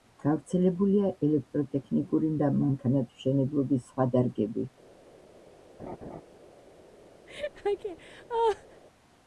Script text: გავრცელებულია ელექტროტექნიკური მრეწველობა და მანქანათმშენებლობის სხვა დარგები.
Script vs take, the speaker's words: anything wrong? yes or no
yes